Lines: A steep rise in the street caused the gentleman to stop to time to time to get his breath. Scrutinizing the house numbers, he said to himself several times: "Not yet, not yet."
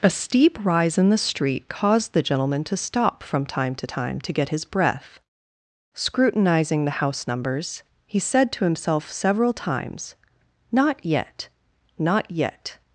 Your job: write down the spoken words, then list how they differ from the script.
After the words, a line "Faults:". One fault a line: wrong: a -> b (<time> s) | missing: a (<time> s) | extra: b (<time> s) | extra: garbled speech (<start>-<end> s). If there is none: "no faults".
A steep rise in the street caused the gentleman to stop from time to time to get his breath. Scrutinizing the house numbers, he said to himself several times: "Not yet, not yet."
Faults:
wrong: to -> from (3.2 s)